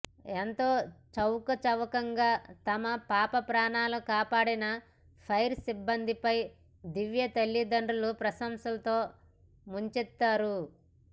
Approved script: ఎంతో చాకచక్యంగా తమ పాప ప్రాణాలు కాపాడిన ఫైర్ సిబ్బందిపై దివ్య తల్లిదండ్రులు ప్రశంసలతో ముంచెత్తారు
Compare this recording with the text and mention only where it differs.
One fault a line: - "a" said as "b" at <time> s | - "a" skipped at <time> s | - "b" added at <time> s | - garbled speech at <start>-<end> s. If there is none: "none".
none